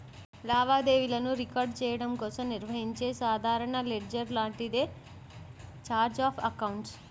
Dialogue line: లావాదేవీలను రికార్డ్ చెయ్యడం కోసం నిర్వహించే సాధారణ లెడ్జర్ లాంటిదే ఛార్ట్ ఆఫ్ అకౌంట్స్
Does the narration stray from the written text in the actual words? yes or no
no